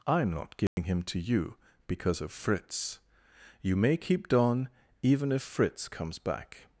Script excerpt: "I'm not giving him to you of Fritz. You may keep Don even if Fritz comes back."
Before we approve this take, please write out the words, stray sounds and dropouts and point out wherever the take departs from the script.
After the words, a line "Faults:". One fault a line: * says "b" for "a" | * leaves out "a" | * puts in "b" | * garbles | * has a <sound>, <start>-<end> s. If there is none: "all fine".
"I'm not giving him to you because of Fritz. You may keep Don even if Fritz comes back."
Faults:
* has a dropout, 0.7-0.8 s
* puts in "because"